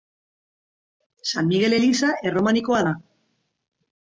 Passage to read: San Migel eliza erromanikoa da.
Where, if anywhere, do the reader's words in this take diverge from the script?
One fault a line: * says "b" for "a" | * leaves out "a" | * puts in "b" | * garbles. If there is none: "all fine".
all fine